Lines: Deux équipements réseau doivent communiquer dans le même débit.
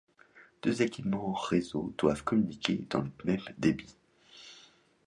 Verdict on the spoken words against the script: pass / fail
pass